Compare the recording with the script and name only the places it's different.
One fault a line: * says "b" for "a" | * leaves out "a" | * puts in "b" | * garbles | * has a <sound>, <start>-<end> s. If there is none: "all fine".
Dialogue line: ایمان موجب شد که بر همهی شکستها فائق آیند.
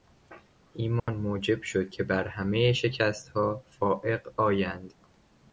* has a dropout, 1.0-1.1 s